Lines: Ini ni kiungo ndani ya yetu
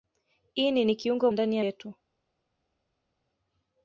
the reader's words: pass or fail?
pass